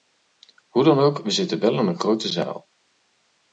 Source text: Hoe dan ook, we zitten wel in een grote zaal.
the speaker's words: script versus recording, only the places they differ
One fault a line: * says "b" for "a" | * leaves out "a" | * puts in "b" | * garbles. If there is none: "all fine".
all fine